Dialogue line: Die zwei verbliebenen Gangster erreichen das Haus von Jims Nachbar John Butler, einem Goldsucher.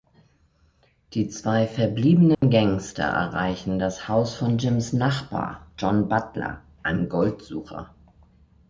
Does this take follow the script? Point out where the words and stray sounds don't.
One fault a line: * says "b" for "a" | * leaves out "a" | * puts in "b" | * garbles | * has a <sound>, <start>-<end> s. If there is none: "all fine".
* has a dropout, 2.3-2.4 s